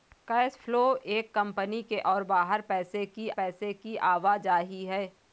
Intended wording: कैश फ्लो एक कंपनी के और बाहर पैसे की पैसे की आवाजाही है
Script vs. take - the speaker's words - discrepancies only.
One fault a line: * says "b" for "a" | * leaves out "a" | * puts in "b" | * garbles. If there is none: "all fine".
all fine